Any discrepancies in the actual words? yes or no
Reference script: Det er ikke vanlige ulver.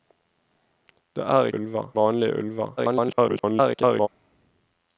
yes